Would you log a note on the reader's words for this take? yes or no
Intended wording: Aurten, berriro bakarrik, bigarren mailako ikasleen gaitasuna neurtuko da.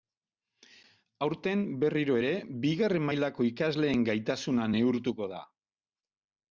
yes